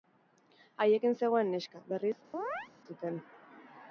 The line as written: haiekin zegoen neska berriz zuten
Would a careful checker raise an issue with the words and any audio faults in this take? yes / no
yes